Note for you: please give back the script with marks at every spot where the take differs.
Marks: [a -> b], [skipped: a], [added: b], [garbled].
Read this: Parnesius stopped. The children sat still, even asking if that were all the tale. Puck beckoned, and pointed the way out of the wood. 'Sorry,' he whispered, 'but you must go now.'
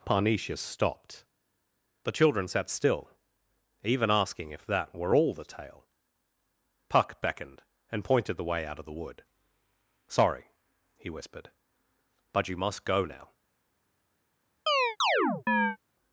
Parnesius stopped. The children sat still, even asking if that were all the tale. Puck beckoned, and pointed the way out of the wood. 'Sorry,' he whispered, 'but you must go now.'